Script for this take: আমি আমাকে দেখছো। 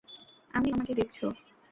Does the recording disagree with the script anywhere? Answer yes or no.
no